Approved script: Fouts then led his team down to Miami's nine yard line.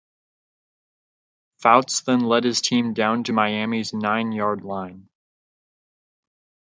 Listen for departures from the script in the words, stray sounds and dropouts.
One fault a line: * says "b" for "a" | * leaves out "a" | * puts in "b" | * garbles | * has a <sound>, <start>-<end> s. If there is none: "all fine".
all fine